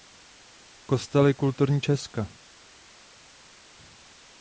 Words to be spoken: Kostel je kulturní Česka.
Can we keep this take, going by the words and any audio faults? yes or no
yes